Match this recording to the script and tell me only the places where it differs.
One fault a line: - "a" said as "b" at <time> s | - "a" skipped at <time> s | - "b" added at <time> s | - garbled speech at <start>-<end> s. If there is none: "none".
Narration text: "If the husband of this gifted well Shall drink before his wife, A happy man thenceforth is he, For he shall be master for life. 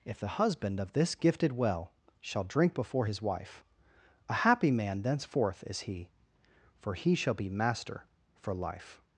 none